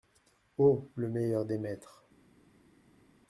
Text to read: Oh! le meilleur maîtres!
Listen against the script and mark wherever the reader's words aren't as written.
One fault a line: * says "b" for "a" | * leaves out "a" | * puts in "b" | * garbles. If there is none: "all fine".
* puts in "des"